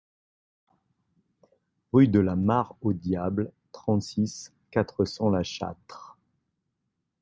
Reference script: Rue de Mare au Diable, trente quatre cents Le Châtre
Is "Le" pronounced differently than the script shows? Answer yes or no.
yes